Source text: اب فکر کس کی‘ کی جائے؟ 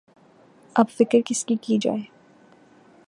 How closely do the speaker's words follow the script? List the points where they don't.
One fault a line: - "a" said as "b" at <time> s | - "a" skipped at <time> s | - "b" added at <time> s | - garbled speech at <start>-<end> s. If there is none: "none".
none